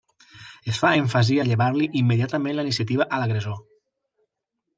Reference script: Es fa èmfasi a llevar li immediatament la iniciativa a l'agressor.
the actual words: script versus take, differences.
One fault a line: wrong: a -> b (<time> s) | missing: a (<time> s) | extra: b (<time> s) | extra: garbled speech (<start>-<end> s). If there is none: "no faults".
no faults